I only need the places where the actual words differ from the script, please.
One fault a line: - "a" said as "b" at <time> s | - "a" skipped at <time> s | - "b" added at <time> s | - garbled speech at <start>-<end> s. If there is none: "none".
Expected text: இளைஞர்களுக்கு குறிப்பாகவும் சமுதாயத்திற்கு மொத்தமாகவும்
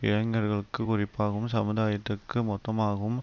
none